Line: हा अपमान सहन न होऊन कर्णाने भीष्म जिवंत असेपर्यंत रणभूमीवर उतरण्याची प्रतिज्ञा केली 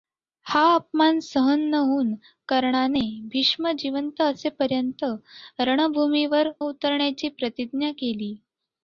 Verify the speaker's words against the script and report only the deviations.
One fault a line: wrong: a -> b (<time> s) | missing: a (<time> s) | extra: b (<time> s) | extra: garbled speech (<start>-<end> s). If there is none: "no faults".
no faults